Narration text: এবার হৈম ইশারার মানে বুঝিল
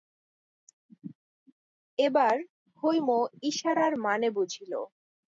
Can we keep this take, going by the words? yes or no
yes